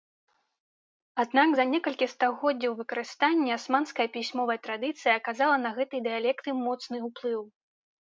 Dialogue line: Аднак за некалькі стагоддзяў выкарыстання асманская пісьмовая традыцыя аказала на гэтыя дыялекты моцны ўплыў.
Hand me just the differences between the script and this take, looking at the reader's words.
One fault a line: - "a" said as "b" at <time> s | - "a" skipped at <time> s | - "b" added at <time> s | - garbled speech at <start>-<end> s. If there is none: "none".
none